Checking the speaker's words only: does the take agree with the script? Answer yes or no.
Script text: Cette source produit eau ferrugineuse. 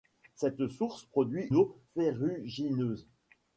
yes